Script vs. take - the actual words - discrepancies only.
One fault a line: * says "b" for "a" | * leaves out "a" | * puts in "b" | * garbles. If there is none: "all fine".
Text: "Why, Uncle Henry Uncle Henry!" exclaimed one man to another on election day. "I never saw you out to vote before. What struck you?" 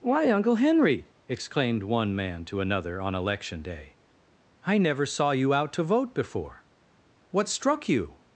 * leaves out "Uncle Henry"